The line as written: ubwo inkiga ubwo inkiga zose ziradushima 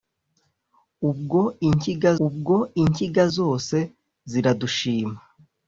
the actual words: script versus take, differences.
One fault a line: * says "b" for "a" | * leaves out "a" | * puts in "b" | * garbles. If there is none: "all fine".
all fine